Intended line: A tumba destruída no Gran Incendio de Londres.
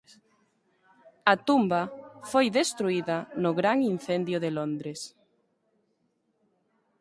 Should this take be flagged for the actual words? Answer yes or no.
yes